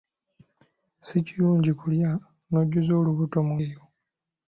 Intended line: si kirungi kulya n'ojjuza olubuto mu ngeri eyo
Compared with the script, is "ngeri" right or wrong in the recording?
wrong